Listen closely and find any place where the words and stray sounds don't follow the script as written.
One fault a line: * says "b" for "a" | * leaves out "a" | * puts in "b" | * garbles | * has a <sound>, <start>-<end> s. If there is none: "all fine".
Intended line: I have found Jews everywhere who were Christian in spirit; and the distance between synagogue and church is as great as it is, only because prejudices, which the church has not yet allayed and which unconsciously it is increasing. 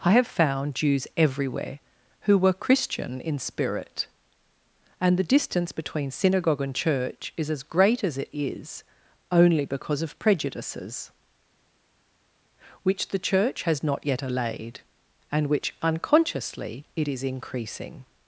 * puts in "of"